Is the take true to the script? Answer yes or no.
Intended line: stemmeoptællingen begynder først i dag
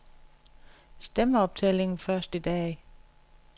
no